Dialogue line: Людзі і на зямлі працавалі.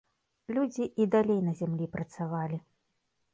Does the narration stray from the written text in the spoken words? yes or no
yes